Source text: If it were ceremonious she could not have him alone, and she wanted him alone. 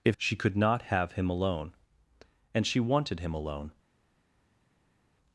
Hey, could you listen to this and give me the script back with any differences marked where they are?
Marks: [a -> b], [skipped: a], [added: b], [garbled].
If [skipped: it were ceremonious] she could not have him alone, and she wanted him alone.